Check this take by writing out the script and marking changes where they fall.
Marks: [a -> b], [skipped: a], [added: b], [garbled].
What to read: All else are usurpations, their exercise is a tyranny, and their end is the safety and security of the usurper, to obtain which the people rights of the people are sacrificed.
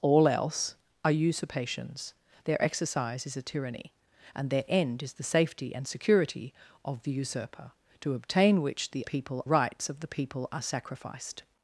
All else are usurpations, their exercise is a tyranny, and their end is the safety and security of the usurper, to obtain which the people rights of the people are sacrificed.